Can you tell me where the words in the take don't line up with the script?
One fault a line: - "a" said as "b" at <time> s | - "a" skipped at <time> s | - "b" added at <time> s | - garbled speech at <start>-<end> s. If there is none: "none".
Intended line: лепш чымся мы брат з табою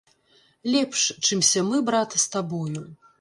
none